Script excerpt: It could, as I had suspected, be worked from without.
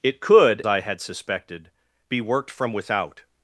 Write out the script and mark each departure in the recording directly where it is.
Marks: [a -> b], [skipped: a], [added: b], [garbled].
It could, [skipped: as] I had suspected, be worked from without.